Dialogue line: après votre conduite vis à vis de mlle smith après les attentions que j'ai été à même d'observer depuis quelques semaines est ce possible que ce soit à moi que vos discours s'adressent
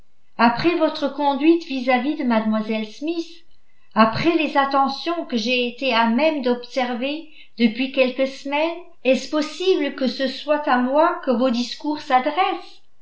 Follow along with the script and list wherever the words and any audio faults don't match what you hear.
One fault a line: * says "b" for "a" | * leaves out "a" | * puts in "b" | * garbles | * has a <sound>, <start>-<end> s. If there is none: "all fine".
all fine